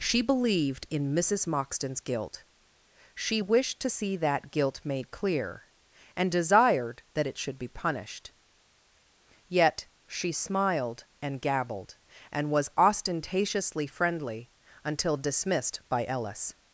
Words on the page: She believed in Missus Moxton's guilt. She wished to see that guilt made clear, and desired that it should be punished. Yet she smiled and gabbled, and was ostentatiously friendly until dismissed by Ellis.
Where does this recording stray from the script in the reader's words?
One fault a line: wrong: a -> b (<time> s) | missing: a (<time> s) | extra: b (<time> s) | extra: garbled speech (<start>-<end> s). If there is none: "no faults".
no faults